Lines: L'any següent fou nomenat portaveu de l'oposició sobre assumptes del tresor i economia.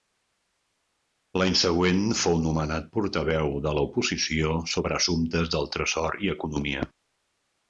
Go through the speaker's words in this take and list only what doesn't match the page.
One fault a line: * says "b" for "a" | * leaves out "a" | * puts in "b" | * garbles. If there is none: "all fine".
all fine